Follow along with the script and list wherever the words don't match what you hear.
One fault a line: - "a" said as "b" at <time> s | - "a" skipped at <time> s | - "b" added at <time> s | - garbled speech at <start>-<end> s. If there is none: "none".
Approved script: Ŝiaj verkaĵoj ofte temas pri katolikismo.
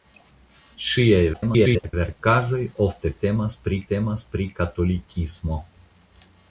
- garbled speech at 1.3-1.9 s
- "temas pri" added at 3.9 s